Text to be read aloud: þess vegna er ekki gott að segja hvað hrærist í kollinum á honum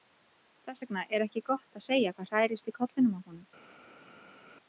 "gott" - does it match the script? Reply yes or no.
yes